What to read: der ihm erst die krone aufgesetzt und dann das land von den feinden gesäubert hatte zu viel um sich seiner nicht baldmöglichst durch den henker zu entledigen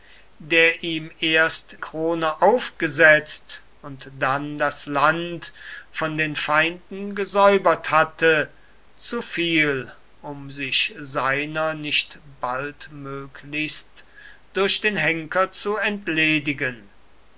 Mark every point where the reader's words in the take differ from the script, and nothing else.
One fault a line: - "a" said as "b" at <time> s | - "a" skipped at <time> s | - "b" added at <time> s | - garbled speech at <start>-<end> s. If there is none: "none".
- "die" skipped at 1.8 s